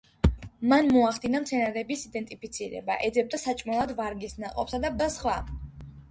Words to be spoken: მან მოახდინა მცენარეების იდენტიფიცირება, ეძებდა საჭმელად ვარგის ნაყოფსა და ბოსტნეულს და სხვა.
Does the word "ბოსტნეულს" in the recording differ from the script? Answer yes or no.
yes